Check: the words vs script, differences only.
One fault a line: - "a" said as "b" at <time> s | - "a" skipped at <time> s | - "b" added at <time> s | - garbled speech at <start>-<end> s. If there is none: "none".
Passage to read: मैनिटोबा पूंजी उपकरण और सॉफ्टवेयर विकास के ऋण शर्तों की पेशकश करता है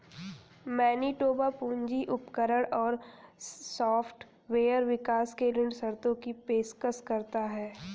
none